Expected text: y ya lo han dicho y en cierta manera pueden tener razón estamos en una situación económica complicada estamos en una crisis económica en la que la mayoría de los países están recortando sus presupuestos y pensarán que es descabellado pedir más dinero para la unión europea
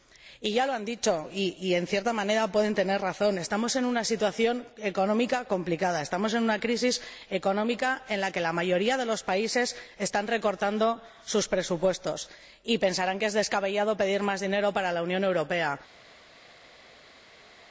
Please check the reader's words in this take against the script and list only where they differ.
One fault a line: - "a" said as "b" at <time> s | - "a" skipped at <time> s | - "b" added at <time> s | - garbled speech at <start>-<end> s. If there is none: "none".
none